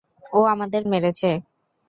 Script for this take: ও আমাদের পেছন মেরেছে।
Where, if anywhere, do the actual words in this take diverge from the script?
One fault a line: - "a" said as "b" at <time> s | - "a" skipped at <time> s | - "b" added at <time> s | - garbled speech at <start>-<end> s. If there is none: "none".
- "পেছন" skipped at 0.8 s